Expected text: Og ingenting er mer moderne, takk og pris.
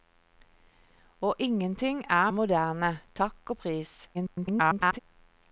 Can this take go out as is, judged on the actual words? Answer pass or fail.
fail